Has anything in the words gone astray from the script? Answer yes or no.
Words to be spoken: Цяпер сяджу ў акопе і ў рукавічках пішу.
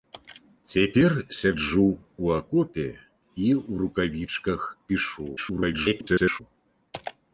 yes